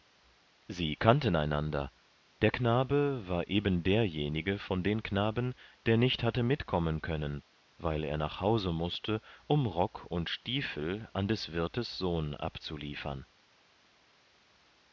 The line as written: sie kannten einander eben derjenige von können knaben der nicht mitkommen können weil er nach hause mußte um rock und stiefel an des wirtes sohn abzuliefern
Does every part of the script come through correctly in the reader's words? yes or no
no